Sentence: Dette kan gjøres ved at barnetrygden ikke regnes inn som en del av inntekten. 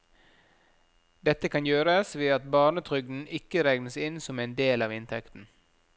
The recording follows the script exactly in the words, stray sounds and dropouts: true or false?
true